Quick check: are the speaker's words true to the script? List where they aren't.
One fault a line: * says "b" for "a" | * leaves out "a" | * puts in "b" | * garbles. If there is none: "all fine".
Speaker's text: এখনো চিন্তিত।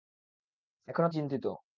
all fine